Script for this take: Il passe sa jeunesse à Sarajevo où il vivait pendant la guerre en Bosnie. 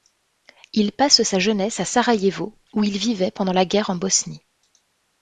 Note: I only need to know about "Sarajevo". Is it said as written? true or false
true